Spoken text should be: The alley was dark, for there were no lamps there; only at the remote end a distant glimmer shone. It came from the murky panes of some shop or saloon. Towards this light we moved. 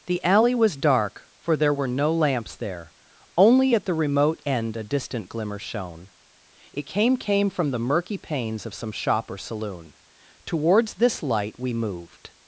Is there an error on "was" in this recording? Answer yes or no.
no